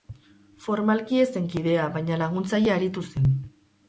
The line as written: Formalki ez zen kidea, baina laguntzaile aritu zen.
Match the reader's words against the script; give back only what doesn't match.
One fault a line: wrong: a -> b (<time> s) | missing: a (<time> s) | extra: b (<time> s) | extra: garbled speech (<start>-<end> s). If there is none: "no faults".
no faults